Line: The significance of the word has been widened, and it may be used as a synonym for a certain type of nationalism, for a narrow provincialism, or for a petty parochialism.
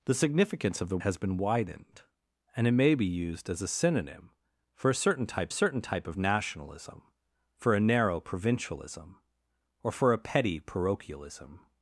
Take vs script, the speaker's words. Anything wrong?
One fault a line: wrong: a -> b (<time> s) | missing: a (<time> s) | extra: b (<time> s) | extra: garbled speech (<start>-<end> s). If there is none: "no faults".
missing: word (1.0 s)
extra: certain type (5.5 s)